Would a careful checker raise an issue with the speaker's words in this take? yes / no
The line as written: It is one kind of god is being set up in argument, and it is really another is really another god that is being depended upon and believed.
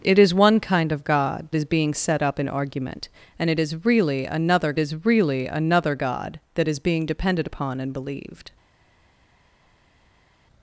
no